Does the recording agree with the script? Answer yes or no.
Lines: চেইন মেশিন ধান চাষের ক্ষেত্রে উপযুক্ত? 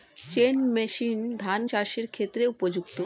yes